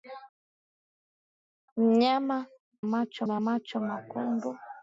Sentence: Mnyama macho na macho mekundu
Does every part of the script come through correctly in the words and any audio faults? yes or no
yes